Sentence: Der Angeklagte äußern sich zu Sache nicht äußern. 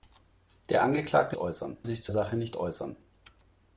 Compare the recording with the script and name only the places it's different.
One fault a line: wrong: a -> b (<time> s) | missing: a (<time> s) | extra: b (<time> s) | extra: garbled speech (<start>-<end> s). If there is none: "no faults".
no faults